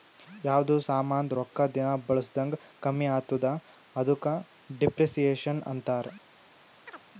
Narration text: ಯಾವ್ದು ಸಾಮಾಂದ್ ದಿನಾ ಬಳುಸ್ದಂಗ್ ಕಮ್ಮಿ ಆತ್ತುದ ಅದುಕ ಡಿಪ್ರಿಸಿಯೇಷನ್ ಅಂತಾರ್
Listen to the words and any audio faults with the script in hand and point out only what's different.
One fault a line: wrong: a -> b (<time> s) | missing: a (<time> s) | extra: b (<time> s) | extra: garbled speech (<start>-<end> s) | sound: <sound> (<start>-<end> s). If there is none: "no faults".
extra: ರೊಕ್ಕಾ (1.3 s)
sound: chirp (6.9-7.0 s)